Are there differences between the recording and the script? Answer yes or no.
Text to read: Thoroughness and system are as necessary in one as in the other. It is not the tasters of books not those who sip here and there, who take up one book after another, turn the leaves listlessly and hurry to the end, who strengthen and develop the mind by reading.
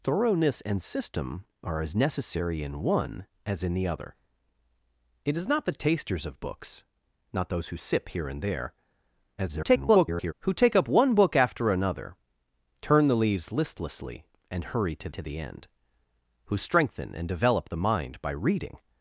yes